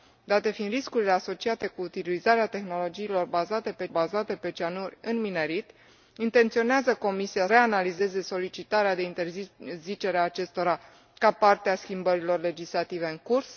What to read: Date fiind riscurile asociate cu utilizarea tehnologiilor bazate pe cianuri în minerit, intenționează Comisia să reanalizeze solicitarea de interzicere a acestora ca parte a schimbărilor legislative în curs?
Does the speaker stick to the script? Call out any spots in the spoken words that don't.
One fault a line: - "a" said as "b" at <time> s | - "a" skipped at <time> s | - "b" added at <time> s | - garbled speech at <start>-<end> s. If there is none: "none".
- "bazate pe" added at 3.9 s
- "să" skipped at 7.5 s